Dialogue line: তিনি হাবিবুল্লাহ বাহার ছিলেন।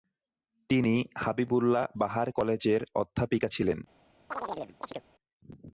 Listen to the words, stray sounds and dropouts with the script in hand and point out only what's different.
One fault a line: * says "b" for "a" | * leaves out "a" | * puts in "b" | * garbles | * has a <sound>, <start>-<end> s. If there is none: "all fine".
* puts in "কলেজের অধ্যাপিকা"
* has a chirp, 4.3-5.0 s